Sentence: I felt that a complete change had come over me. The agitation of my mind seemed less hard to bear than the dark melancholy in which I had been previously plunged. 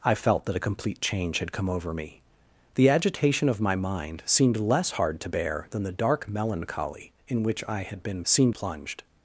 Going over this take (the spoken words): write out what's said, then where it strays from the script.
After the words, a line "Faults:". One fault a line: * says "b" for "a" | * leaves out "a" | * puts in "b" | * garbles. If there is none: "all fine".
I felt that a complete change had come over me. The agitation of my mind seemed less hard to bear than the dark melancholy in which I had been seemed plunged.
Faults:
* says "seemed" for "previously"